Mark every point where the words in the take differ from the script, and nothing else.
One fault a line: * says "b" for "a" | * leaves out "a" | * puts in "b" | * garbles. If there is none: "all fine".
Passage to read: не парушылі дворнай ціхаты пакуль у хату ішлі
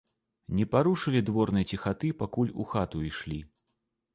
all fine